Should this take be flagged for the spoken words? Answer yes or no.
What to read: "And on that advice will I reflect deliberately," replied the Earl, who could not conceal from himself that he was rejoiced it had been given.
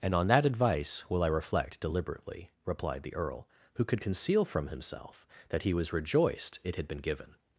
yes